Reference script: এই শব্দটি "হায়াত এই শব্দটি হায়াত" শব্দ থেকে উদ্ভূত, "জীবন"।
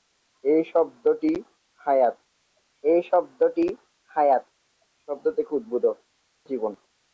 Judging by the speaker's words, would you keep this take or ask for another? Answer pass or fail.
pass